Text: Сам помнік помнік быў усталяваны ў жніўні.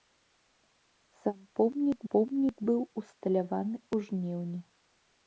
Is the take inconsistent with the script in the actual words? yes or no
no